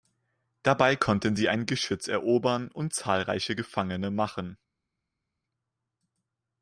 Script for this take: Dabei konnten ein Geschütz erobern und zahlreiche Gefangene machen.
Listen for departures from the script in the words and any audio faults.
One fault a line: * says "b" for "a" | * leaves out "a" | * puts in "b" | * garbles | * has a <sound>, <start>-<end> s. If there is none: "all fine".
* puts in "sie"